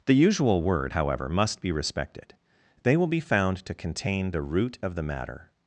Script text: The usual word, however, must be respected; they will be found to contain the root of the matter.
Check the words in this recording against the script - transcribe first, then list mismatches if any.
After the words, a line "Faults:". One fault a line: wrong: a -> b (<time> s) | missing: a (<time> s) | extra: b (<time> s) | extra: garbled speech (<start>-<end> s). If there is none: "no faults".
The usual word, however, must be respected; they will be found to contain the root of the matter.
Faults:
no faults